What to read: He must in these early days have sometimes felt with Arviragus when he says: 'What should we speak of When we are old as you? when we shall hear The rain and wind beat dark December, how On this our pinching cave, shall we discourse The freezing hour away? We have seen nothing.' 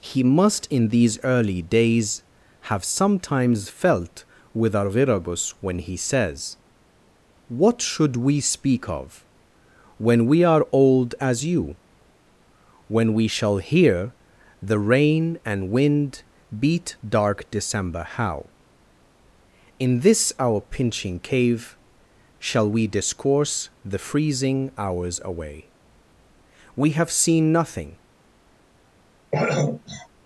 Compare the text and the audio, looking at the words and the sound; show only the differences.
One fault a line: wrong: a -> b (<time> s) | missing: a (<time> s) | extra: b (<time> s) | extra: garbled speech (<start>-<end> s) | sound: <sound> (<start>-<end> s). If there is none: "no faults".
wrong: On -> In (19.8 s)
wrong: hour -> hours (24.8 s)
sound: throat clearing (29.3-30.1 s)